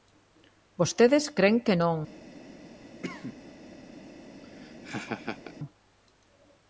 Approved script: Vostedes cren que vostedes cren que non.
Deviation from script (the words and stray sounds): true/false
true